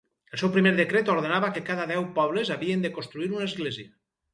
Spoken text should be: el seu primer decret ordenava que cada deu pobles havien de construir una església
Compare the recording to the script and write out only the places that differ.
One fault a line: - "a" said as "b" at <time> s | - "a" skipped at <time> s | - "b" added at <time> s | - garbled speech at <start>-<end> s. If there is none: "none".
none